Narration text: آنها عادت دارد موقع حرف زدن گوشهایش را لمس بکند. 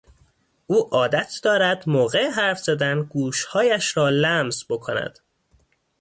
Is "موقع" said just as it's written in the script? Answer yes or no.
yes